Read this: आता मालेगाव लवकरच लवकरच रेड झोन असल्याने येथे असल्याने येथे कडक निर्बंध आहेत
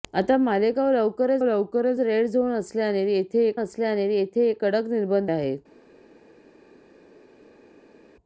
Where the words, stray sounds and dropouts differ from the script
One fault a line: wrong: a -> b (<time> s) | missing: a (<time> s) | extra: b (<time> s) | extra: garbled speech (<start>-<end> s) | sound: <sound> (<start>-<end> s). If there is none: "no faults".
no faults